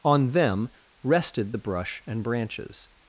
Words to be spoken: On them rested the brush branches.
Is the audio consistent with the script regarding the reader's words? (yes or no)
no